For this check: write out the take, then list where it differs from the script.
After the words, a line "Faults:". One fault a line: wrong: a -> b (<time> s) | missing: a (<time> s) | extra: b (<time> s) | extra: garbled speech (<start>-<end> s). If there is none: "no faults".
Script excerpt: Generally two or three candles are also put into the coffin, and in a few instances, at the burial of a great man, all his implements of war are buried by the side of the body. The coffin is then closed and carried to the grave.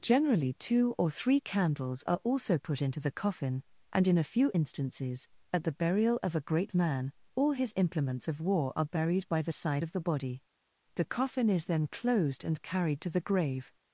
Generally two or three candles are also put into the coffin, and in a few instances, at the burial of a great man, all his implements of war are buried by the side of the body. The coffin is then closed and carried to the grave.
Faults:
no faults